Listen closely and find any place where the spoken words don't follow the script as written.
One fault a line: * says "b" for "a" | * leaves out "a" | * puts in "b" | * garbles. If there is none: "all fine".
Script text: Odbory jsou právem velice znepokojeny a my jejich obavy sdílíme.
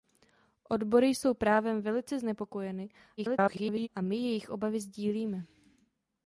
* garbles